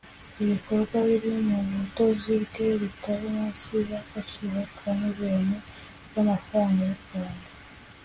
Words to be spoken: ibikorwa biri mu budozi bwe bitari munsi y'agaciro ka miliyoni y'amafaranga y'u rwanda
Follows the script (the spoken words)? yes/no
yes